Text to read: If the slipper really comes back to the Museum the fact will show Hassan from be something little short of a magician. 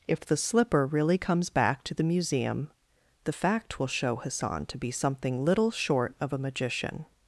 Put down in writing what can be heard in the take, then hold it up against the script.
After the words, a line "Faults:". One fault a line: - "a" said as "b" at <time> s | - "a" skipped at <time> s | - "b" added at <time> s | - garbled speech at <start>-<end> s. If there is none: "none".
If the slipper really comes back to the Museum the fact will show Hassan to be something little short of a magician.
Faults:
- "from" said as "to" at 4.7 s